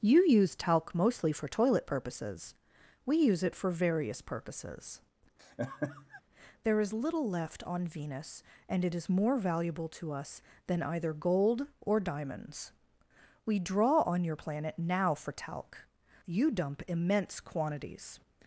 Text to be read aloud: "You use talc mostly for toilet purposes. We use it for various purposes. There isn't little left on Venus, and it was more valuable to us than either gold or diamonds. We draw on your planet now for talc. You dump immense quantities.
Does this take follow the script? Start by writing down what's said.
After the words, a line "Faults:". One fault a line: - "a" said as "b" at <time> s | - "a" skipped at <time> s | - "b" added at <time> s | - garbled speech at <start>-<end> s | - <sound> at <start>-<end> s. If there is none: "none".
"You use talc mostly for toilet purposes. We use it for various purposes. There is little left on Venus, and it is more valuable to us than either gold or diamonds. We draw on your planet now for talc. You dump immense quantities.
Faults:
- laugh at 5.4-6.2 s
- "isn't" said as "is" at 6.8 s
- "was" said as "is" at 8.9 s